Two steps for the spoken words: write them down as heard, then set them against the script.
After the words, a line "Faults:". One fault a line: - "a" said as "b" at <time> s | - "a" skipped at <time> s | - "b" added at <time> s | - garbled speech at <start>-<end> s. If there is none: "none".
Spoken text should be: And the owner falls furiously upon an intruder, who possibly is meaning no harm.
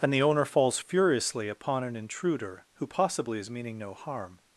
And the owner falls furiously upon an intruder, who possibly is meaning no harm.
Faults:
none